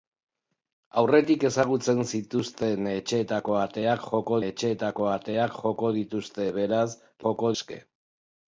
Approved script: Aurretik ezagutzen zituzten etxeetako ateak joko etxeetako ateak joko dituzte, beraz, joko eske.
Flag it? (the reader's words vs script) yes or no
no